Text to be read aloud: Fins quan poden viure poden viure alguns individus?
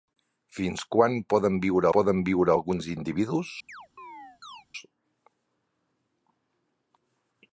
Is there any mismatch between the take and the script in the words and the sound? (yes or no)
yes